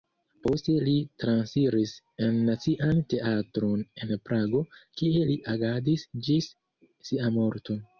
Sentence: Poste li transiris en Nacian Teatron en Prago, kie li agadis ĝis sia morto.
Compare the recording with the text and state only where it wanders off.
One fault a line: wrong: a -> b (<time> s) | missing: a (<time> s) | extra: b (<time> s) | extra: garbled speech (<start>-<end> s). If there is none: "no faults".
no faults